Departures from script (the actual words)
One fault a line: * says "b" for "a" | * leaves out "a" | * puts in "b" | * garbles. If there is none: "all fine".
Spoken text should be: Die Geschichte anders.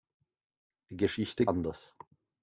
all fine